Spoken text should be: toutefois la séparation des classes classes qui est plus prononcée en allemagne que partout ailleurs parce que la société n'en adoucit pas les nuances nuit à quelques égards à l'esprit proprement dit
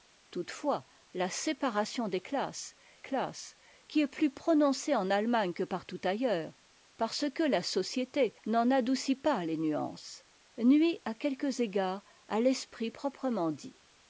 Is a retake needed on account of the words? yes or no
no